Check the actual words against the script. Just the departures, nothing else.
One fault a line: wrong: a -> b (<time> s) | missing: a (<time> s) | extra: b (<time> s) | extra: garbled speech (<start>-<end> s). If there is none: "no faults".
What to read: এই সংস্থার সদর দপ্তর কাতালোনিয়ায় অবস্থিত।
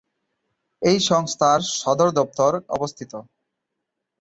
missing: কাতালোনিয়ায় (2.5 s)